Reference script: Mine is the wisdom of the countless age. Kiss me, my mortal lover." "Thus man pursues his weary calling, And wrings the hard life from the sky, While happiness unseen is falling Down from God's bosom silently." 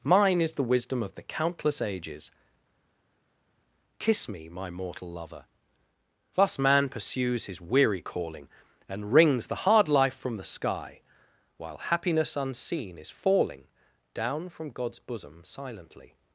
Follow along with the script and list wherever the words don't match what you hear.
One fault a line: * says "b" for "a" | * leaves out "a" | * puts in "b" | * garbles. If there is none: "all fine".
* says "ages" for "age"